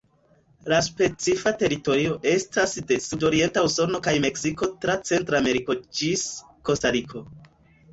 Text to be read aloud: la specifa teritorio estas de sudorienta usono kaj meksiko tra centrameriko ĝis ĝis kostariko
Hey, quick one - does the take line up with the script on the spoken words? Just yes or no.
no